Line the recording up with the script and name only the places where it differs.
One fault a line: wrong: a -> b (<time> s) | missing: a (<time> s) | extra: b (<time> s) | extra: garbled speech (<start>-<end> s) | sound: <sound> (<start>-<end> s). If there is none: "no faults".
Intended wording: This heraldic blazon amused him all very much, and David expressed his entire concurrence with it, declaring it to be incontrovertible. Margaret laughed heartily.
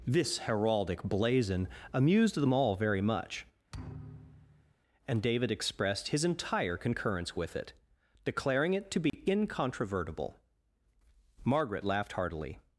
wrong: him -> them (2.4 s)
sound: thud (3.7-4.7 s)
sound: dropout (9.1-9.1 s)